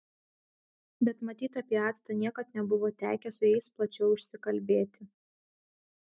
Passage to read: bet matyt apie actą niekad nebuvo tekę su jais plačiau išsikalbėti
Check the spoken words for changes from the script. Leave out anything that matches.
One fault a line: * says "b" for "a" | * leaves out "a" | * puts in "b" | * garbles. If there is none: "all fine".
all fine